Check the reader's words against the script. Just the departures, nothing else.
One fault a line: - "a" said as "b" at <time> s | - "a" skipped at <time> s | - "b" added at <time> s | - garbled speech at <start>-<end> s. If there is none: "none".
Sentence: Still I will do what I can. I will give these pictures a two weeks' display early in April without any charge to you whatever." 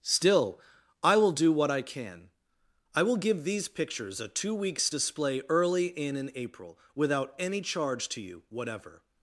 - "in" added at 6.2 s